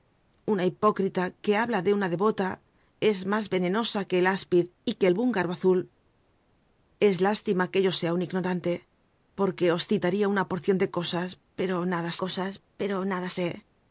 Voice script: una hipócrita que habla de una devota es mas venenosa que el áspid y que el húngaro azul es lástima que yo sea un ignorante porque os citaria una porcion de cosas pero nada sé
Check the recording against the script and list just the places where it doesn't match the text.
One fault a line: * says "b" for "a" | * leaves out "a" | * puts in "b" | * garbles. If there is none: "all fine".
* puts in "cosas pero nada"